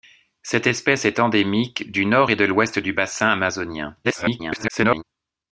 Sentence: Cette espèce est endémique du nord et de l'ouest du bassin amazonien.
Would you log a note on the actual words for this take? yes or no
yes